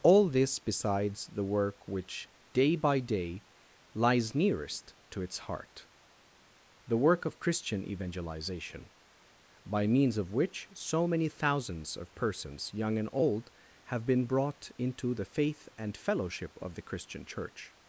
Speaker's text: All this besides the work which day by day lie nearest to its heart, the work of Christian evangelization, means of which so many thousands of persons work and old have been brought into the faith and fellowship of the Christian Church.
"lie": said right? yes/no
no